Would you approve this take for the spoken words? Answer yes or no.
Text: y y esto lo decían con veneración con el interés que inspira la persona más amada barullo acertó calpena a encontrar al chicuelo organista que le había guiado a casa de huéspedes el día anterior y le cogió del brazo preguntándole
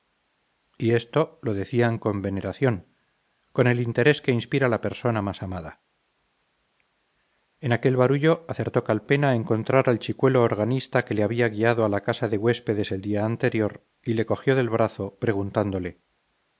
no